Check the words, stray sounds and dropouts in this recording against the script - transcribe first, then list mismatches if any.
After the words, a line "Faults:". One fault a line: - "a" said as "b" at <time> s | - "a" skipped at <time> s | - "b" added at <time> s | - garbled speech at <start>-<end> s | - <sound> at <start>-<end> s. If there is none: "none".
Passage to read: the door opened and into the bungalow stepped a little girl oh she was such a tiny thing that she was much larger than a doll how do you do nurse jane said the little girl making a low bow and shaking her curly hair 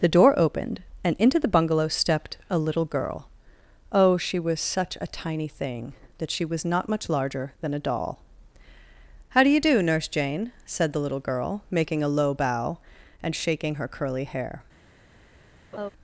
the door opened and into the bungalow stepped a little girl oh she was such a tiny thing that she was not much larger than a doll how do you do nurse jane said the little girl making a low bow and shaking her curly hair
Faults:
- "not" added at 6.7 s
- laugh at 15.7-15.9 s